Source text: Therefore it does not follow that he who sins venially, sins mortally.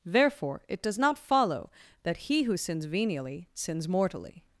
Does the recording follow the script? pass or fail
pass